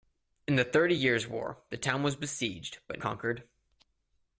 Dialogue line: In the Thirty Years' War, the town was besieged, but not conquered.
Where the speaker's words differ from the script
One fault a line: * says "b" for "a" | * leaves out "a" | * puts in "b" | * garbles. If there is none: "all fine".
* leaves out "not"